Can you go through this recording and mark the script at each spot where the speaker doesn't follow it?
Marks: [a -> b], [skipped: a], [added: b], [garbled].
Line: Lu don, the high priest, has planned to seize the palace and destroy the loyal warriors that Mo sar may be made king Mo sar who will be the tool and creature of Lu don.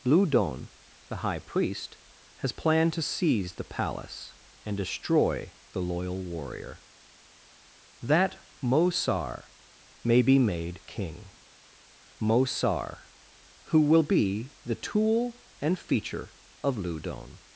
Lu don, the high priest, has planned to seize the palace and destroy the loyal [warriors -> warrior] that Mo sar may be made king Mo sar who will be the tool and [creature -> feature] of Lu don.